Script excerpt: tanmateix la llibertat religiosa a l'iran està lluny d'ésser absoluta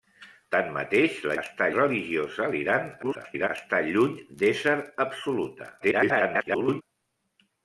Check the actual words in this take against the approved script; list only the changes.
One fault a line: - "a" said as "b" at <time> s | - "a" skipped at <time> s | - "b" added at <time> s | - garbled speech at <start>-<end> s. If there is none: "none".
- "llibertat" said as "està" at 1.4 s
- garbled speech at 3.0-3.5 s
- garbled speech at 5.8-6.8 s